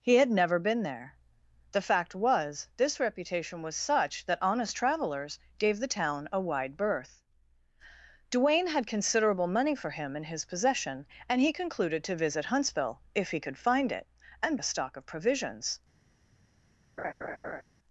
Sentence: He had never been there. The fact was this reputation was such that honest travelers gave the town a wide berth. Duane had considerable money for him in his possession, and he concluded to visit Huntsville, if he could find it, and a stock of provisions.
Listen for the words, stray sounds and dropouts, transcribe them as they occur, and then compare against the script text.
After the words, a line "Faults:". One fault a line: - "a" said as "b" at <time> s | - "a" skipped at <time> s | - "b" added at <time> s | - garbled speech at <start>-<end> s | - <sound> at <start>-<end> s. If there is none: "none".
He had never been there. The fact was this reputation was such that honest travelers gave the town a wide berth. Duane had considerable money for him in his possession, and he concluded to visit Huntsville, if he could find it, and a stock of provisions.
Faults:
- laugh at 17.0-17.6 s